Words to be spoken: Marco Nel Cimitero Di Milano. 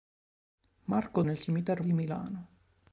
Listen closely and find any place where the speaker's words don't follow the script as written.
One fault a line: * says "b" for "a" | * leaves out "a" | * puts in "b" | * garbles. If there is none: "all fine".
all fine